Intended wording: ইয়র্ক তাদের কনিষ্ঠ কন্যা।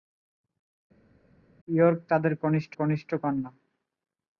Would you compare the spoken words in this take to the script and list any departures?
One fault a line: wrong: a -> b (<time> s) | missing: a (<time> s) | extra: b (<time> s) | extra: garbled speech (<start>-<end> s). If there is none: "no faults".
extra: কনিষ্ঠ (2.7 s)